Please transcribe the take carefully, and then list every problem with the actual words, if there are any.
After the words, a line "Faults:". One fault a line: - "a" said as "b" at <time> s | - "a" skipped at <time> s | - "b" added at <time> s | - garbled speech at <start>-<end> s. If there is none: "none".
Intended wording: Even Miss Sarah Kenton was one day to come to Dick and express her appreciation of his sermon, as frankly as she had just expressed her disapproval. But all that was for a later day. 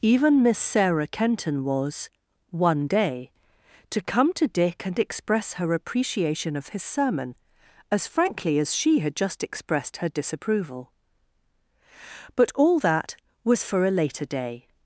Even Miss Sarah Kenton was one day to come to Dick and express her appreciation of his sermon, as frankly as she had just expressed her disapproval. But all that was for a later day.
Faults:
none